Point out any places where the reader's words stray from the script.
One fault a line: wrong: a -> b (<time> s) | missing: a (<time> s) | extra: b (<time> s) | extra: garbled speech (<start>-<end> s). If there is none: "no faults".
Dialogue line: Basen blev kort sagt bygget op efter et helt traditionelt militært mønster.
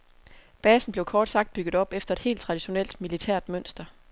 no faults